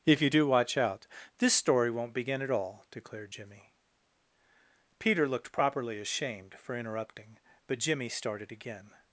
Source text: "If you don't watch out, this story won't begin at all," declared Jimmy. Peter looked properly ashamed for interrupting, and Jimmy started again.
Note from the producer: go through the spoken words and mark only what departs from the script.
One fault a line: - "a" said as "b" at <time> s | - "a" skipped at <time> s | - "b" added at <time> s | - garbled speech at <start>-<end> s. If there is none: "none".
- "don't" said as "do" at 0.3 s
- "and" said as "but" at 7.7 s